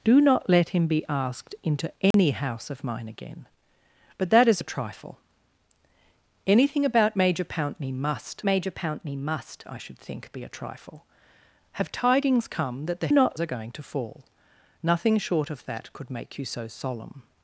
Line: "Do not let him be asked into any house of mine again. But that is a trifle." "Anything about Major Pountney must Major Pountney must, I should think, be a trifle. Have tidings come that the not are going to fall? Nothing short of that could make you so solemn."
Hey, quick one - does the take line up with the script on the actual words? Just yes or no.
yes